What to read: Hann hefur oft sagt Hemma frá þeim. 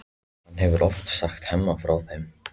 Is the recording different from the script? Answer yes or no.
no